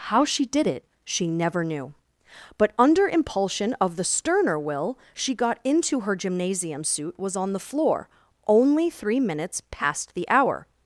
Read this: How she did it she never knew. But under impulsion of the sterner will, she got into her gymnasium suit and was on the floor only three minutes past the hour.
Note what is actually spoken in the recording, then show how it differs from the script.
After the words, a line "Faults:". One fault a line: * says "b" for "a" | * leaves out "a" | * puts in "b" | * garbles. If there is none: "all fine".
How she did it she never knew. But under impulsion of the sterner will, she got into her gymnasium suit was on the floor only three minutes past the hour.
Faults:
* leaves out "and"